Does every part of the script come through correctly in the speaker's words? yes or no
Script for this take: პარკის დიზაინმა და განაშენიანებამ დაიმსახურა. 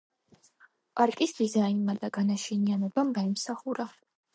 yes